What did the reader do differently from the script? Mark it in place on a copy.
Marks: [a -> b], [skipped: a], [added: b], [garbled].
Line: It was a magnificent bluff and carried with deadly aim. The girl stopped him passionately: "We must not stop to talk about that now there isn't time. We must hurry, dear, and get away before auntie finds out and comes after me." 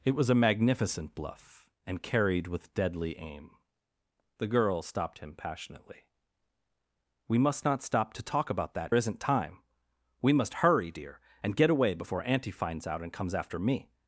It was a magnificent bluff and carried with deadly aim. The girl stopped him passionately: "We must not stop to talk about that [skipped: now there] isn't time. We must hurry, dear, and get away before auntie finds out and comes after me."